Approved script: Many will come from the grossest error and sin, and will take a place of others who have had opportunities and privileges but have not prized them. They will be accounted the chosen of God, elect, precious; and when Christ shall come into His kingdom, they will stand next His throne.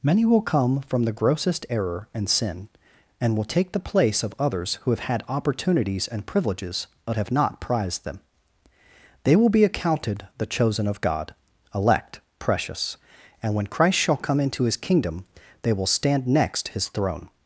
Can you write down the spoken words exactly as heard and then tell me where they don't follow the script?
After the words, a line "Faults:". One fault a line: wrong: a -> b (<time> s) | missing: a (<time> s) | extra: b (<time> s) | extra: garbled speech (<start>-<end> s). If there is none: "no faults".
Many will come from the grossest error and sin, and will take the place of others who have had opportunities and privileges but have not prized them. They will be accounted the chosen of God, elect, precious; and when Christ shall come into His kingdom, they will stand next His throne.
Faults:
wrong: a -> the (3.7 s)